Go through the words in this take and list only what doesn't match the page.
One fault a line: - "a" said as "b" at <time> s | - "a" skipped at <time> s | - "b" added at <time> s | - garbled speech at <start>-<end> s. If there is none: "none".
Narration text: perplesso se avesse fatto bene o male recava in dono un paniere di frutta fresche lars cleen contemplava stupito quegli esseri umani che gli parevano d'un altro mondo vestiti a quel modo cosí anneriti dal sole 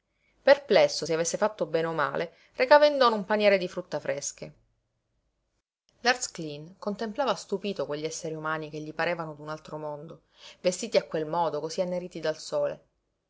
none